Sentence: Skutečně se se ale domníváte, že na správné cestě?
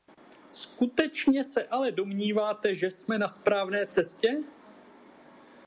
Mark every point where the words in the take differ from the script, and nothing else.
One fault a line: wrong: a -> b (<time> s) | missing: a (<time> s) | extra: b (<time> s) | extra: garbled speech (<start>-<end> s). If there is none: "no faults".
missing: se (1.7 s)
extra: jsme (2.9 s)